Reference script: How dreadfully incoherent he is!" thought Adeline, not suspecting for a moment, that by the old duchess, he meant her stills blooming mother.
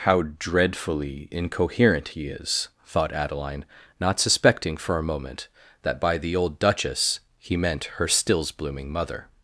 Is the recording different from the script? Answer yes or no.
no